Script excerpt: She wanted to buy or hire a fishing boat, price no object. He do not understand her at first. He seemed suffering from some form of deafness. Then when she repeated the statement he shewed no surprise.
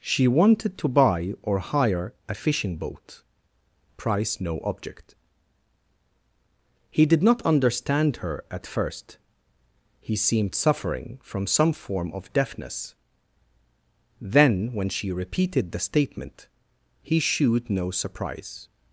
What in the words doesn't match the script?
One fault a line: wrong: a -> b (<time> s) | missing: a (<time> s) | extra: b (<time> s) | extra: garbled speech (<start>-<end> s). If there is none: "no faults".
wrong: do -> did (7.0 s)